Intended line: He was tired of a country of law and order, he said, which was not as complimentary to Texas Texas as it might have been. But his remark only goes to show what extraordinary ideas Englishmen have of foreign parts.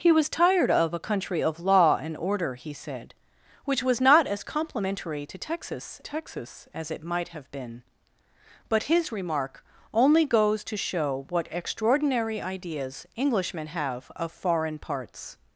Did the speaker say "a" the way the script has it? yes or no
yes